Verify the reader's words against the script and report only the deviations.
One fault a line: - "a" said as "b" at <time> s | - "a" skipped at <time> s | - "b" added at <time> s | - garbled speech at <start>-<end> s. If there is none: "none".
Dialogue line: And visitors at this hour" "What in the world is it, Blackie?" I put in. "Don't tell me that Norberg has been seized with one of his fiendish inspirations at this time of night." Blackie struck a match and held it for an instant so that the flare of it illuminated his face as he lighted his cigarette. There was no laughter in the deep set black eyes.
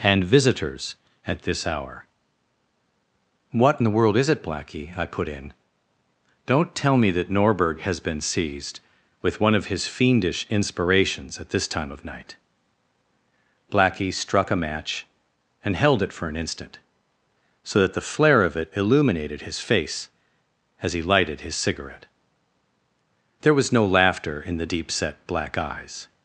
none